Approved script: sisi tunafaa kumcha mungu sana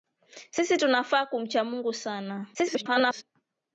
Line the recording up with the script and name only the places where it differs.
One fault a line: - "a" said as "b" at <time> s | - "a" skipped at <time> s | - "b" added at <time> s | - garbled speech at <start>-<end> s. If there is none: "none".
- garbled speech at 2.5-3.2 s